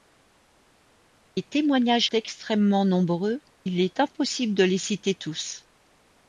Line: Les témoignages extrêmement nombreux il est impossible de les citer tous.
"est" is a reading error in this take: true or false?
false